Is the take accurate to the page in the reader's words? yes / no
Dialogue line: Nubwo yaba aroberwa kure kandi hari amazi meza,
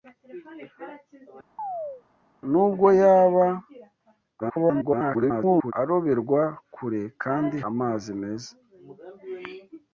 no